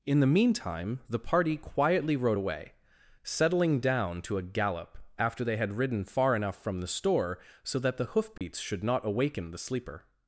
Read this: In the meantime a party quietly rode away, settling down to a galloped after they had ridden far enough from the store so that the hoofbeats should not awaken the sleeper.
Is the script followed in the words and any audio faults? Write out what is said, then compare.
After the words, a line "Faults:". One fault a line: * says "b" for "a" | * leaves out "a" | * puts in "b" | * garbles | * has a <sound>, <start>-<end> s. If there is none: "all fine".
In the meantime the party quietly rode away, settling down to a gallop after they had ridden far enough from the store so that the hoofbeats should not awaken the sleeper.
Faults:
* says "the" for "a"
* says "gallop" for "galloped"
* has a dropout, 8.4-8.4 s